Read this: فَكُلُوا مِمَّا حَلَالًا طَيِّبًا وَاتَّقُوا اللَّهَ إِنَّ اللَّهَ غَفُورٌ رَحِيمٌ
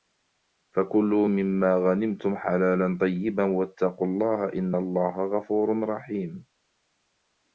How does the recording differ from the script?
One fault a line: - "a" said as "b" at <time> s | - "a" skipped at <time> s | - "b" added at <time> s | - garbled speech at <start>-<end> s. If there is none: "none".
- "غَنِمْتُمْ" added at 1.7 s